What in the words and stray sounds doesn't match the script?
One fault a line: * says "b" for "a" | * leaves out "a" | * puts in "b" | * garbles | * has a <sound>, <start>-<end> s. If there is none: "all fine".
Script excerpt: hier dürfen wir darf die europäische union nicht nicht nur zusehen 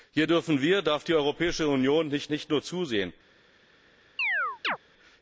* has a chirp, 4.2-4.8 s